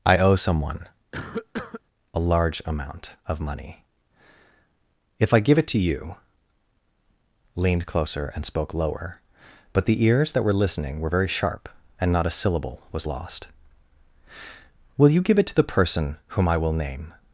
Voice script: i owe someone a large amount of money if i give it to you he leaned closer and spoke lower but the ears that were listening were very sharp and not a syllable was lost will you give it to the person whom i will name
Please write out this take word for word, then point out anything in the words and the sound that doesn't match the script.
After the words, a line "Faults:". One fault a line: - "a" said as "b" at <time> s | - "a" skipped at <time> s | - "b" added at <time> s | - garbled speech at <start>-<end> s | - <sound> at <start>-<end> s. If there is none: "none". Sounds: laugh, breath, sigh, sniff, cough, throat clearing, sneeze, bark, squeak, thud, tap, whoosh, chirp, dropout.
i owe someone a large amount of money if i give it to you leaned closer and spoke lower but the ears that were listening were very sharp and not a syllable was lost will you give it to the person whom i will name
Faults:
- cough at 1.1-1.8 s
- "he" skipped at 6.1 s